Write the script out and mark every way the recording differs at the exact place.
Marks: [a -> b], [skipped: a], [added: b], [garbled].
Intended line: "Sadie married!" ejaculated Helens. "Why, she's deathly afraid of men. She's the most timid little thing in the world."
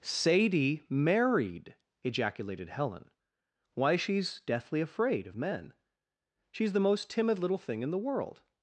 "Sadie married!" ejaculated [Helens. -> Helen] "Why, she's deathly afraid of men. She's the most timid little thing in the world."